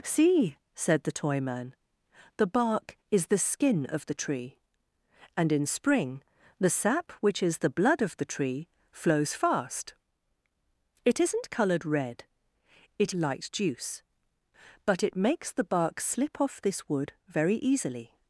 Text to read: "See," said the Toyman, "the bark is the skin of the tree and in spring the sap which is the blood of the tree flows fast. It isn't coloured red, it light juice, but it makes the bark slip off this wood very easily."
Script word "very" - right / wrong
right